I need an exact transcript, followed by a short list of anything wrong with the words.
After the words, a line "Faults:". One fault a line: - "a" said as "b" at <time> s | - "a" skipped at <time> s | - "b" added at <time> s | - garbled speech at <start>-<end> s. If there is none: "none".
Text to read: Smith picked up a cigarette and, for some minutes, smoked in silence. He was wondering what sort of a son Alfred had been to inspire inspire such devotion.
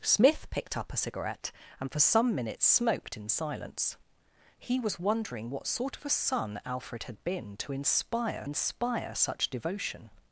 Smith picked up a cigarette and, for some minutes, smoked in silence. He was wondering what sort of a son Alfred had been to inspire inspire such devotion.
Faults:
none